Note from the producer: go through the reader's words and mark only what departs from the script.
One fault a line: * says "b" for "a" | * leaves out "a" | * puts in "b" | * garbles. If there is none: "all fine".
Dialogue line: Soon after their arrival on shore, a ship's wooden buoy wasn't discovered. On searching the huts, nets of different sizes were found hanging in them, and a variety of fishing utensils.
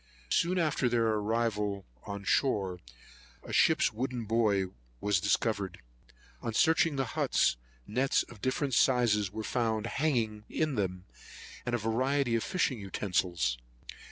* says "was" for "wasn't"